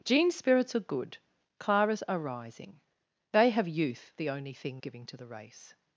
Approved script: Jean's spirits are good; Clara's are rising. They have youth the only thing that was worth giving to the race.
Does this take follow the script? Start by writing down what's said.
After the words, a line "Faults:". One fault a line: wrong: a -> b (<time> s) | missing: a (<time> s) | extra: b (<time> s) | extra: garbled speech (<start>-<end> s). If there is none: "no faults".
Jean's spirits are good; Clara's are rising. They have youth the only thing giving to the race.
Faults:
missing: that was worth (4.8 s)